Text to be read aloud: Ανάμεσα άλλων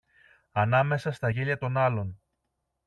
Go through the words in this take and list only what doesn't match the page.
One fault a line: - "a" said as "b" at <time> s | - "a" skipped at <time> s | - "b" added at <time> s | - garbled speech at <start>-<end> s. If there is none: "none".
- "στα γέλια των" added at 1.1 s